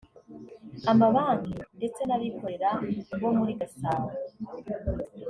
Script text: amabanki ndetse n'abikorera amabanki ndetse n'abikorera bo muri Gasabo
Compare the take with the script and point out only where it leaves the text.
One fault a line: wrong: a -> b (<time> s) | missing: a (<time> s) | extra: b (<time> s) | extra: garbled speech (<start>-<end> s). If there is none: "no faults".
missing: amabanki ndetse n'abikorera (2.7 s)